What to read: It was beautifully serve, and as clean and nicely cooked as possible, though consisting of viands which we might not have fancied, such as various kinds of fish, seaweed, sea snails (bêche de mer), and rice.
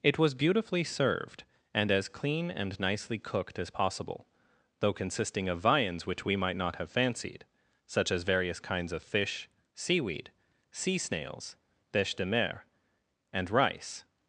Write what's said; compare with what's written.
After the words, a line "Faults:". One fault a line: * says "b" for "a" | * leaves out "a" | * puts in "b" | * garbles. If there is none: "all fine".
It was beautifully served, and as clean and nicely cooked as possible, though consisting of viands which we might not have fancied, such as various kinds of fish, seaweed, sea snails (bêche de mer), and rice.
Faults:
* says "served" for "serve"